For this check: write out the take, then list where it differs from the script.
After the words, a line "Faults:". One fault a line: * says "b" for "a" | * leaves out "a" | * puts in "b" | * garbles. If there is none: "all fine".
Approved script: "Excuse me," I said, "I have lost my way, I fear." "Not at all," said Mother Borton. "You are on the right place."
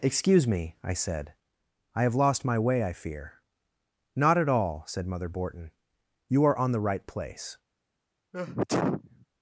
"Excuse me," I said, "I have lost my way, I fear." "Not at all," said Mother Borton. "You are on the right place."
Faults:
all fine